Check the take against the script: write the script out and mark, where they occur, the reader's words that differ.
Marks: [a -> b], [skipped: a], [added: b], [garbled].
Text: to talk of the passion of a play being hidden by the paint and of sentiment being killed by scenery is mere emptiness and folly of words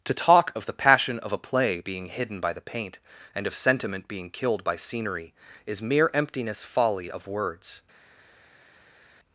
to talk of the passion of a play being hidden by the paint and of sentiment being killed by scenery is mere emptiness [skipped: and] folly of words